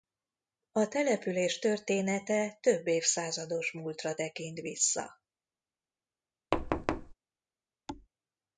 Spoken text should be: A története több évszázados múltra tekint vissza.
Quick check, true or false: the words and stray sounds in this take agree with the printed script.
false